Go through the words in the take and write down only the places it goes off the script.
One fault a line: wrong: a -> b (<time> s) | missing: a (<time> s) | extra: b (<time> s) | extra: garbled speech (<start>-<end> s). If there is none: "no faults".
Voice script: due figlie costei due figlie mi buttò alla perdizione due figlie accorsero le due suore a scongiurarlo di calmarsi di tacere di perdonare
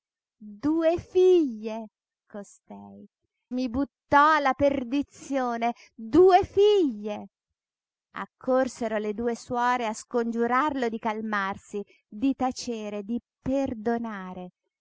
missing: due figlie (3.1 s)